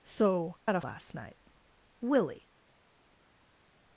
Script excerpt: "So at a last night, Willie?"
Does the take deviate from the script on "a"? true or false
false